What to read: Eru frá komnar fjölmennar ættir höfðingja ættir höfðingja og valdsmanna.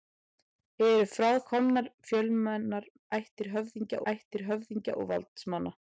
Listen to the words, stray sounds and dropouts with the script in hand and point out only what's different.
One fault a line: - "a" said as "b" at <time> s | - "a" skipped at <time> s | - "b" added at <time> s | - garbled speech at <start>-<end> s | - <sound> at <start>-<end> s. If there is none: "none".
none